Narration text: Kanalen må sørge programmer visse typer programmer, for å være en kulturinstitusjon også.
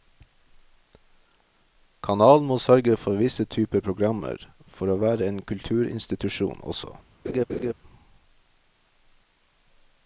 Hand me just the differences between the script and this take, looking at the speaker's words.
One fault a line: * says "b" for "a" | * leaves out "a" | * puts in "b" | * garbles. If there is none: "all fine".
* says "for" for "programmer"